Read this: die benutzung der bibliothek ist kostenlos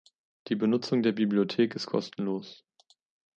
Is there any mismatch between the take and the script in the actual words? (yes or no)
no